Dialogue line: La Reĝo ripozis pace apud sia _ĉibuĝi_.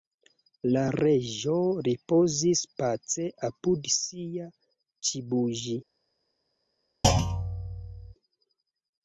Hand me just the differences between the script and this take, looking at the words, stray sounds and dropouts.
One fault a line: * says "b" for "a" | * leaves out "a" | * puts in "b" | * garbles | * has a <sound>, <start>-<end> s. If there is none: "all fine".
* has a thud, 7.0-8.1 s